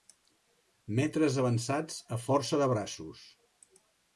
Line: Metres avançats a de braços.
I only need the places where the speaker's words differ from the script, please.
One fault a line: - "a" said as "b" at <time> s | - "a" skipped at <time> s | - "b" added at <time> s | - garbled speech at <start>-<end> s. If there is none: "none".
- "força" added at 2.2 s